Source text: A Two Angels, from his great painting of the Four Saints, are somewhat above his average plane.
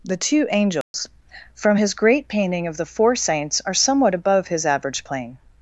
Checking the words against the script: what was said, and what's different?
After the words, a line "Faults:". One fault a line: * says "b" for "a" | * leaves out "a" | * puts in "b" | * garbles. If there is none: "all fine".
The Two Angels, from his great painting of the Four Saints, are somewhat above his average plane.
Faults:
* says "The" for "A"